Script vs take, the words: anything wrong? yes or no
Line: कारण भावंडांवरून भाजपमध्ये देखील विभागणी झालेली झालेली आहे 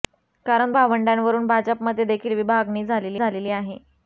no